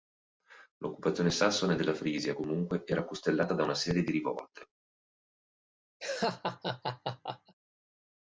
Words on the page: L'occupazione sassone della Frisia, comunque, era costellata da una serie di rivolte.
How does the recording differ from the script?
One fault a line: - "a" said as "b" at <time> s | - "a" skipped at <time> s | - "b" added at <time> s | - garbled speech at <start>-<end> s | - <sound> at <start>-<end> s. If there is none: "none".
- laugh at 6.0-7.5 s